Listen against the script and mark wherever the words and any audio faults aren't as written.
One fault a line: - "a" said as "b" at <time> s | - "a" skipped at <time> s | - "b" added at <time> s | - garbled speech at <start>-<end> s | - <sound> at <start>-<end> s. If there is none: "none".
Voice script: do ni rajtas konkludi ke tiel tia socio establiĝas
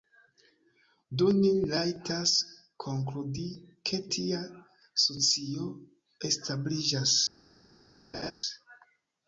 - "tiel" skipped at 4.0 s
- laugh at 8.1-8.3 s